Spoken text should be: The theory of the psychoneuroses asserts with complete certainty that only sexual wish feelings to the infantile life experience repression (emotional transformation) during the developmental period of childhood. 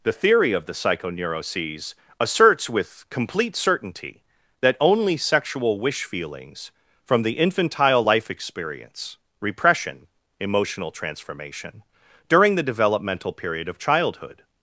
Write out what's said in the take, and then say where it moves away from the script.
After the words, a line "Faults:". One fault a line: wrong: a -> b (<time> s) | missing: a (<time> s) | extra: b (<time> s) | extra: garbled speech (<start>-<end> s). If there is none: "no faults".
The theory of the psychoneuroses asserts with complete certainty that only sexual wish feelings from the infantile life experience repression (emotional transformation) during the developmental period of childhood.
Faults:
wrong: to -> from (7.0 s)